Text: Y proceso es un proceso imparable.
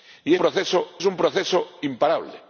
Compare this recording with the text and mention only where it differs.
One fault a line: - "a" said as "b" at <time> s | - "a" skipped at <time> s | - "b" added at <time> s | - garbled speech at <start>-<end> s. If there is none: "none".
none